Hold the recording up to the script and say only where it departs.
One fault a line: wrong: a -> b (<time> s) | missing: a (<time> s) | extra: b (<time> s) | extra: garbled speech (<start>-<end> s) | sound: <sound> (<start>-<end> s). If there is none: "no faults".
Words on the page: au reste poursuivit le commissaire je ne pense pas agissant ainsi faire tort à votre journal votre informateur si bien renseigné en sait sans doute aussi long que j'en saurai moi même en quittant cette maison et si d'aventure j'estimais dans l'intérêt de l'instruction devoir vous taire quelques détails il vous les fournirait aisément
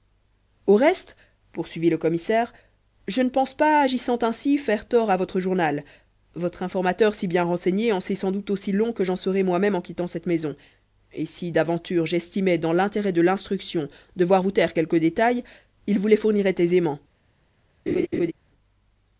sound: laugh (17.9-18.3 s)